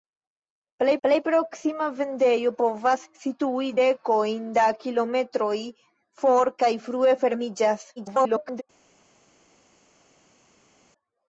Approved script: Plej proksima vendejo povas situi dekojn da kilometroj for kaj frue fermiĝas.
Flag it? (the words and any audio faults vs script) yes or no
yes